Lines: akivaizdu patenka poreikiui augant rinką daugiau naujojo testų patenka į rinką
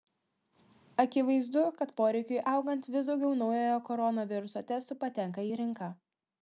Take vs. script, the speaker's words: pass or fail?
fail